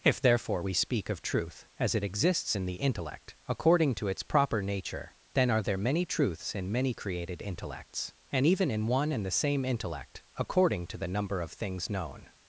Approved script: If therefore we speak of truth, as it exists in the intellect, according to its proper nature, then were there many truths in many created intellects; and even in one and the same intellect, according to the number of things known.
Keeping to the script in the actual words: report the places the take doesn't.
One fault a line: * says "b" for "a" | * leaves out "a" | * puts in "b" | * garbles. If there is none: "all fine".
* says "are" for "were"